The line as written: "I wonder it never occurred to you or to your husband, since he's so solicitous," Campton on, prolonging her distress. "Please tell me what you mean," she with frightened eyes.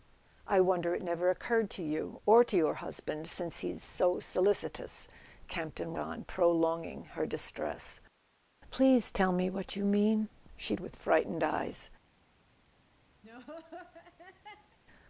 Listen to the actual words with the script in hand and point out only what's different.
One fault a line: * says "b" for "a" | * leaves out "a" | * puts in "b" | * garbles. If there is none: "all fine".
all fine